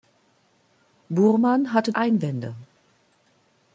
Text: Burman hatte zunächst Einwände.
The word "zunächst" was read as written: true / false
false